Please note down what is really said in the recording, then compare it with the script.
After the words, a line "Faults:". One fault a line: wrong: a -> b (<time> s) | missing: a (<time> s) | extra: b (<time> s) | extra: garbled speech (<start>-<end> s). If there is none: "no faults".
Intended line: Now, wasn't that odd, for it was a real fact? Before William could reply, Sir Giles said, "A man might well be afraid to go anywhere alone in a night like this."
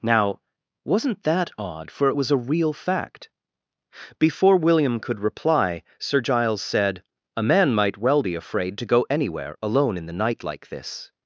Now, wasn't that odd, for it was a real fact? Before William could reply, Sir Giles said, "A man might well be afraid to go anywhere alone in the night like this."
Faults:
wrong: a -> the (10.0 s)